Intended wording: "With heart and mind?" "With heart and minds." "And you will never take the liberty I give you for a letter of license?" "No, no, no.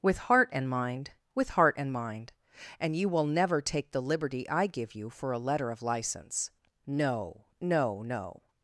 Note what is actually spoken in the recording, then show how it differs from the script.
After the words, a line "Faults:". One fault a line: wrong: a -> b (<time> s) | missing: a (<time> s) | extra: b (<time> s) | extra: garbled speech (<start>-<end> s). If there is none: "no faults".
"With heart and mind?" "With heart and mind." "And you will never take the liberty I give you for a letter of license?" "No, no, no.
Faults:
wrong: minds -> mind (1.9 s)